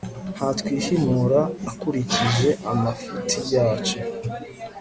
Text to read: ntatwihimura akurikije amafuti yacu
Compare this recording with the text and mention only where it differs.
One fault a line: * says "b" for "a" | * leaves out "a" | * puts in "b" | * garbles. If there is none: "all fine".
all fine